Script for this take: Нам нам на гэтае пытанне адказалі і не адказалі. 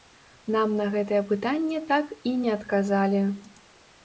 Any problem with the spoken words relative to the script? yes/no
yes